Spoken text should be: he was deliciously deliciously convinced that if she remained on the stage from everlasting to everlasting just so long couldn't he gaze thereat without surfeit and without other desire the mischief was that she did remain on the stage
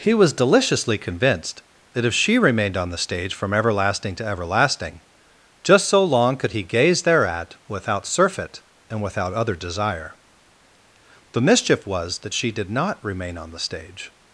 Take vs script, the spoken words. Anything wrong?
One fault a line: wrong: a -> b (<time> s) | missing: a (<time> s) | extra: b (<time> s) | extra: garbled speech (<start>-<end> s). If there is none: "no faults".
missing: deliciously (1.0 s)
wrong: couldn't -> could (6.4 s)
extra: not (12.7 s)